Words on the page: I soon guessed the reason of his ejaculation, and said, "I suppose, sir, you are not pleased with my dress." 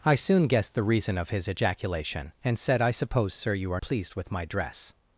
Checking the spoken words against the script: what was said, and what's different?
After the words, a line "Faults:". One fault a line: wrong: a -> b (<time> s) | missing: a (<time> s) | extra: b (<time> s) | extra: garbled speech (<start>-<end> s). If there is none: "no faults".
I soon guessed the reason of his ejaculation, and said, "I suppose, sir, you are pleased with my dress."
Faults:
missing: not (3.8 s)